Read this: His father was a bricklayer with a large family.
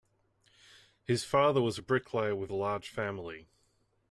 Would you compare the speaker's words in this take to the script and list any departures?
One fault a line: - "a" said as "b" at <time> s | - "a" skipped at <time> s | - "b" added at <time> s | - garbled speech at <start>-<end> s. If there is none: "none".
none